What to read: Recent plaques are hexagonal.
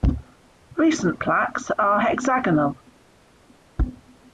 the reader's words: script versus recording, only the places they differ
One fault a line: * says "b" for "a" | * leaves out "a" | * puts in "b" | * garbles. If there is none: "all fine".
all fine